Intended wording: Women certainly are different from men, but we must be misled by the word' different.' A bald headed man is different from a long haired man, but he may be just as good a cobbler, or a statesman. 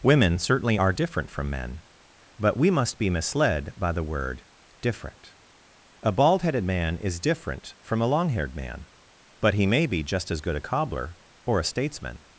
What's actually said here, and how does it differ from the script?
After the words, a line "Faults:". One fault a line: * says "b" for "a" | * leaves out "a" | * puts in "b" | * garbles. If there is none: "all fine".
Women certainly are different from men, but we must be misled by the word' different.' A bald headed man is different from a long haired man, but he may be just as good a cobbler, or a statesman.
Faults:
all fine